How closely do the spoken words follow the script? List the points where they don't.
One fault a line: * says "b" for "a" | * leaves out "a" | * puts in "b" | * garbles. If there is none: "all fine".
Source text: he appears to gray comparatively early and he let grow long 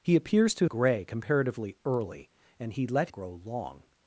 all fine